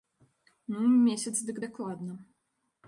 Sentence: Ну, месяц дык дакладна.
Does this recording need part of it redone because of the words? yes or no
no